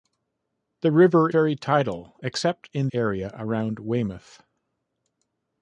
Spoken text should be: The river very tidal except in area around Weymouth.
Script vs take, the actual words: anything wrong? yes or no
no